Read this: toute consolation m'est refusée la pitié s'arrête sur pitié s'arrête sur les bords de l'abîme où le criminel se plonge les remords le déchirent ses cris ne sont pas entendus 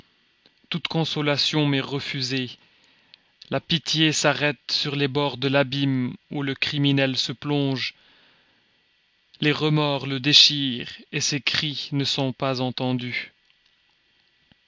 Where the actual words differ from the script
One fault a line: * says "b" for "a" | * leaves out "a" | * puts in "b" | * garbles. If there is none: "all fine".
* leaves out "pitié s'arrête sur"